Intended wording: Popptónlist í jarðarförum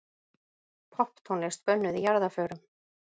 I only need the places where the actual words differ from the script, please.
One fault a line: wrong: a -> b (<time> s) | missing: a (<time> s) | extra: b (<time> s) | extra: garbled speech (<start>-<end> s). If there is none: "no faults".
extra: bönnuð (1.7 s)